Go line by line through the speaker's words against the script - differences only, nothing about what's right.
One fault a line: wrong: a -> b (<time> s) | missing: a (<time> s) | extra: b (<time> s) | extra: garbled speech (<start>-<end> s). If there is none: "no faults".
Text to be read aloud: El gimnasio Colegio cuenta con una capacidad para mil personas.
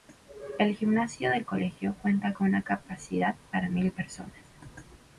extra: del (1.3 s)